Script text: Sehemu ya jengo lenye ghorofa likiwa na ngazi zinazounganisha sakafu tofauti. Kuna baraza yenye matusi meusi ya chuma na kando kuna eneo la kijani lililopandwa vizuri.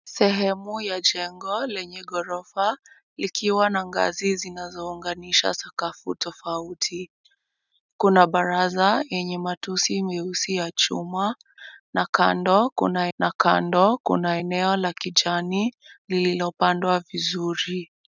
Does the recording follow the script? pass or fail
fail